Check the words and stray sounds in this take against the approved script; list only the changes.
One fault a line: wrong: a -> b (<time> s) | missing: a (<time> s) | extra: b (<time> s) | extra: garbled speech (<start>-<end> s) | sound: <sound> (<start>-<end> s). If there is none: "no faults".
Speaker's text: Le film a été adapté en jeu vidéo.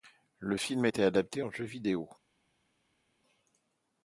no faults